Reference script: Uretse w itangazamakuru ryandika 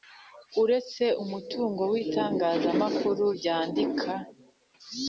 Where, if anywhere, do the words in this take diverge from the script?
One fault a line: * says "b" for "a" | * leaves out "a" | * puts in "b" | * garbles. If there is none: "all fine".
* puts in "umutungo"